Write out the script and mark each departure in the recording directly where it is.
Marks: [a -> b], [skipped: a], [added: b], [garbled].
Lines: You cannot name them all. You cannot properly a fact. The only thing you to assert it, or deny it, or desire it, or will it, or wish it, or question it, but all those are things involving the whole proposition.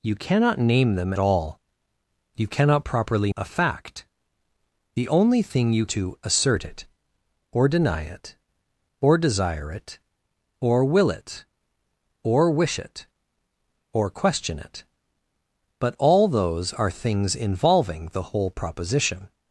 You cannot name them all. You cannot properly a fact. The only thing you to assert it, or deny it, or desire it, or will it, or wish it, or question it, but all those are things involving the whole proposition.